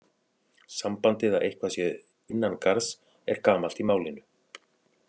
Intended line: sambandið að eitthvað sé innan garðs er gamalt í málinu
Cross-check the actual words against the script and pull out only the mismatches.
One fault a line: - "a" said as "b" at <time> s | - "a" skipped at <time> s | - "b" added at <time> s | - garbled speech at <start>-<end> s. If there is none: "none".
none